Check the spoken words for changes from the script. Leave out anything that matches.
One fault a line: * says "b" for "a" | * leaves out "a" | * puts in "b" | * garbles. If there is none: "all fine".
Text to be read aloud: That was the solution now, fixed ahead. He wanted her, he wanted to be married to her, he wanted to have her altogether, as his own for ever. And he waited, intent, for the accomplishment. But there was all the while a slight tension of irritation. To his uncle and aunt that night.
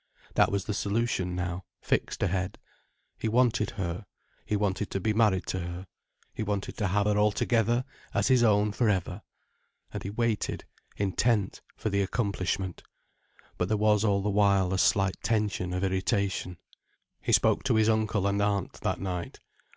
* puts in "He spoke"